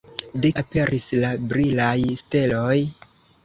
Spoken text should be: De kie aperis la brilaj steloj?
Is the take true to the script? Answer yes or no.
no